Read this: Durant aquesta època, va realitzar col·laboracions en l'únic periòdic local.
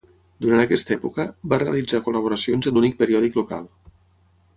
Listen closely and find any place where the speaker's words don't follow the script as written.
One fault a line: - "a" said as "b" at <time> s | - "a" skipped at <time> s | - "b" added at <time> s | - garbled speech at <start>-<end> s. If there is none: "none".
none